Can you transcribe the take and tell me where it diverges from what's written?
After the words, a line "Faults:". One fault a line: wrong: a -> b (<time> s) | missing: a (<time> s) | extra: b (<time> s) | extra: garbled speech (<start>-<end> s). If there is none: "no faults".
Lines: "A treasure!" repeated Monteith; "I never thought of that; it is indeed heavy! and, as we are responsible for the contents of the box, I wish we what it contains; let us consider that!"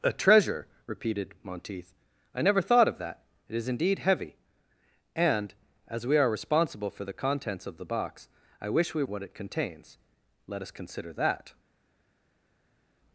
"A treasure!" repeated Monteith; "I never thought of that; it is indeed heavy! and, as we are responsible for the contents of the box, I wish we what it contains; let us consider that!"
Faults:
no faults